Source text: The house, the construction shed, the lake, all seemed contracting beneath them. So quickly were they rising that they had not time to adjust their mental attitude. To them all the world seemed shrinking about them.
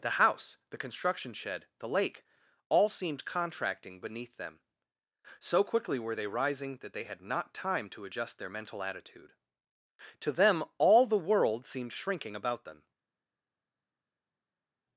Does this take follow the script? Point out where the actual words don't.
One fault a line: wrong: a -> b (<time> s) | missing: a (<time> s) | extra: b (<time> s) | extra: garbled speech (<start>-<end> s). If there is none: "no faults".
no faults